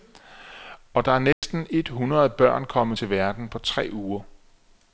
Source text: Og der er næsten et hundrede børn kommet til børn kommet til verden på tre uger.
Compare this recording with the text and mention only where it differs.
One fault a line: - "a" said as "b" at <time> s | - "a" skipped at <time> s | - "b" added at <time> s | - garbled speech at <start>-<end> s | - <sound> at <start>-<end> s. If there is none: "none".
- dropout at 1.3-1.4 s
- "børn kommet til" skipped at 3.1 s